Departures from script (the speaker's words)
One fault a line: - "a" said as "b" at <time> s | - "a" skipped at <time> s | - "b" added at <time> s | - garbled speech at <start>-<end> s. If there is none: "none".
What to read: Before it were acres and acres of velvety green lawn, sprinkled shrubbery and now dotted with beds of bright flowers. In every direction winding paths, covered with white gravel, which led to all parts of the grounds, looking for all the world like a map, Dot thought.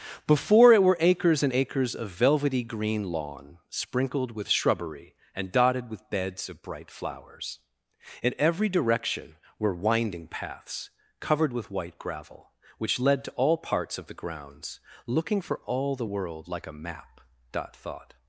- "with" added at 4.3 s
- "now" skipped at 5.5 s
- "were" added at 9.6 s